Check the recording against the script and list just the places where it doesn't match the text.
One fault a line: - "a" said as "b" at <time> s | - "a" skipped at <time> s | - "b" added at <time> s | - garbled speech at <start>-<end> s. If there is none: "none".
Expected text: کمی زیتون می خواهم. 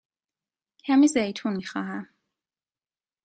none